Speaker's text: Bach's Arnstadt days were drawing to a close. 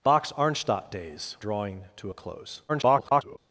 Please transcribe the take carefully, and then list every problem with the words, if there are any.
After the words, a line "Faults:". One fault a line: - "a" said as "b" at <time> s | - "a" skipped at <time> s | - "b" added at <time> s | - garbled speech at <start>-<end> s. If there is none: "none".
Bach's Arnstadt days drawing to a close. [garbled]
Faults:
- "were" skipped at 1.4 s
- garbled speech at 2.7-3.4 s